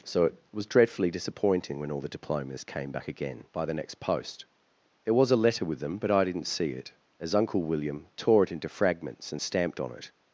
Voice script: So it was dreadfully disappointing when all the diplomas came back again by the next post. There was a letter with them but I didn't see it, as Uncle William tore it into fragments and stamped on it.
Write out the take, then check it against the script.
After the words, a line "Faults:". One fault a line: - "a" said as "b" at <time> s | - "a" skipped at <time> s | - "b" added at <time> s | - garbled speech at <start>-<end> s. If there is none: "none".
So it was dreadfully disappointing when all the diplomas came back again by the next post. There was a letter with them but I didn't see it, as Uncle William tore it into fragments and stamped on it.
Faults:
none